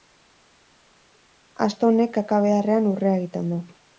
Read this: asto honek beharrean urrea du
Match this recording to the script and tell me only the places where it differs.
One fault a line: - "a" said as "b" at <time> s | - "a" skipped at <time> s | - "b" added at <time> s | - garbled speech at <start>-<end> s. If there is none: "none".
- "kaka" added at 2.2 s
- "egiten" added at 3.2 s